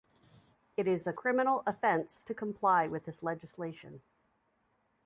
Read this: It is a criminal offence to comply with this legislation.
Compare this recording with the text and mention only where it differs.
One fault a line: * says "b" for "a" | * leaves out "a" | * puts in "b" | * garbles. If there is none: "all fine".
all fine